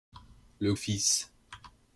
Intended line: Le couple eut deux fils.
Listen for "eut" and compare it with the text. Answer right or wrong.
wrong